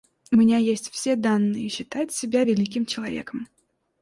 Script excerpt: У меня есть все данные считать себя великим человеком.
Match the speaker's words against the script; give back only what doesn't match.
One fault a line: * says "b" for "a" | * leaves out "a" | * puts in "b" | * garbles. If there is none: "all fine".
all fine